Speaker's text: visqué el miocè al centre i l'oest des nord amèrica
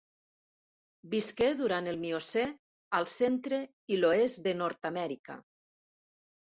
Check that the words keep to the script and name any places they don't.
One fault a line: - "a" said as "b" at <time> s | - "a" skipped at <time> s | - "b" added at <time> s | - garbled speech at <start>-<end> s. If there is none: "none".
- "durant" added at 1.6 s
- "des" said as "de" at 4.5 s